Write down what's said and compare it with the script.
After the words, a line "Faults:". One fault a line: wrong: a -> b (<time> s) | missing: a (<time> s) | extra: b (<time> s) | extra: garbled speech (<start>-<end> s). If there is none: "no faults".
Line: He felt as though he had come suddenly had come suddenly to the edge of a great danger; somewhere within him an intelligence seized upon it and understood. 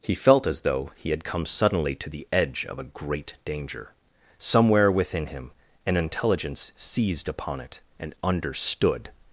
He felt as though he had come suddenly to the edge of a great danger; somewhere within him an intelligence seized upon it and understood.
Faults:
missing: had come suddenly (1.9 s)